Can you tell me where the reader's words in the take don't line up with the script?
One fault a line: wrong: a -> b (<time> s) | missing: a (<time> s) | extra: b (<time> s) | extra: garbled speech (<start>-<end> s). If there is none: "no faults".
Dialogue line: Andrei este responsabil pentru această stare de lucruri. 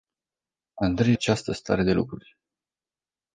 missing: este responsabil pentru (1.1 s)